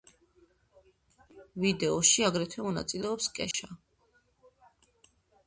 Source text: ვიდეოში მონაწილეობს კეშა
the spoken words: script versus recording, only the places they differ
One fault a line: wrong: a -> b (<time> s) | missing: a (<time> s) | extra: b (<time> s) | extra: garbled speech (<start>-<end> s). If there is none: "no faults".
extra: აგრეთვე (2.3 s)